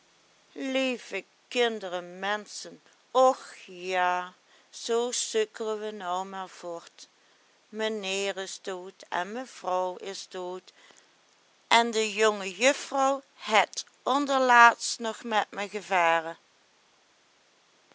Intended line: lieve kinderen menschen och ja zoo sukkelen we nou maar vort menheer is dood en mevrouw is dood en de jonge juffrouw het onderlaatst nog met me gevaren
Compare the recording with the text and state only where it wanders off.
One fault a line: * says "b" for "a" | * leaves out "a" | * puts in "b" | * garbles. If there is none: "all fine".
all fine